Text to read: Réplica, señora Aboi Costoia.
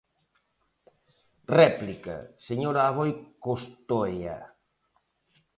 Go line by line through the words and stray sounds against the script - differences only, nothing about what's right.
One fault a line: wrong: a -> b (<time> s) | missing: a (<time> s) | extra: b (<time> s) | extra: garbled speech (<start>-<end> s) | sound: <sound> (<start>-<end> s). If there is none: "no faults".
no faults